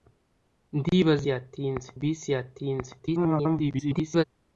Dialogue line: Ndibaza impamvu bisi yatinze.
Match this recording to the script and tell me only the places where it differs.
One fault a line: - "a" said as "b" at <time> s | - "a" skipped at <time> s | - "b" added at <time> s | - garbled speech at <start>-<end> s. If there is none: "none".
- "impamvu" said as "yatinze" at 1.3 s
- garbled speech at 3.0-4.2 s